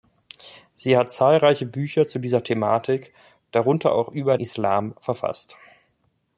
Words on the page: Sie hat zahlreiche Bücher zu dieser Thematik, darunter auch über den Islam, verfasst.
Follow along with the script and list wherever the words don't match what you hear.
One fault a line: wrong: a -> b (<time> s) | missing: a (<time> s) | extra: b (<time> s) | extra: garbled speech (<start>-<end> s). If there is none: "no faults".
missing: den (4.4 s)